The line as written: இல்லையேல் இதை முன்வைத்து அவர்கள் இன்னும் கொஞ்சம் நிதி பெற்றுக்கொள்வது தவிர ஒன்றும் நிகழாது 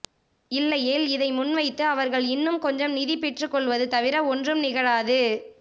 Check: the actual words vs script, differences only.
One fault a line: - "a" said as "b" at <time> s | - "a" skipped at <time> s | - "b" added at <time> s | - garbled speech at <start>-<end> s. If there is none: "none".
none